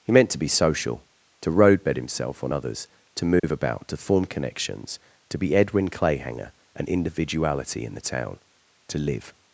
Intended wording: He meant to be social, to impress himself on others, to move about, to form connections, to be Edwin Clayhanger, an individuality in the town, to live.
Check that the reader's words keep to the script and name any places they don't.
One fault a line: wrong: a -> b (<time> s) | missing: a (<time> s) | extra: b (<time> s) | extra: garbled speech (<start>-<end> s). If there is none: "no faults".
wrong: impress -> roadbed (1.5 s)